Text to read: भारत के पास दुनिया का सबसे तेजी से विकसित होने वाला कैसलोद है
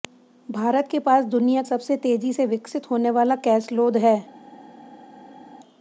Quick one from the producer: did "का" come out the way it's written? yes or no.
no